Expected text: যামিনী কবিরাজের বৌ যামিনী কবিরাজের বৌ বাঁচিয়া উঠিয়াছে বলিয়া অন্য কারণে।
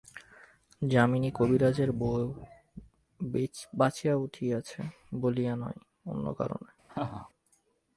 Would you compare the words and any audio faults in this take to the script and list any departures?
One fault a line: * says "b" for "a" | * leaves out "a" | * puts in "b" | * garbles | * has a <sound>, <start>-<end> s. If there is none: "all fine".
* leaves out "যামিনী কবিরাজের বৌ"
* puts in "নয়"
* has a laugh, 6.9-7.3 s